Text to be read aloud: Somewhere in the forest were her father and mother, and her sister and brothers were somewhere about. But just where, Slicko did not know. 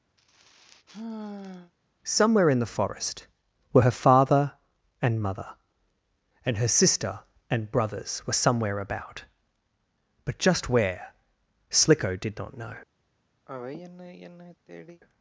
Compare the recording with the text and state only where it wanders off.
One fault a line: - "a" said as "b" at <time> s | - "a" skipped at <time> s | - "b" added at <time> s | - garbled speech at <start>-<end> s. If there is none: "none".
none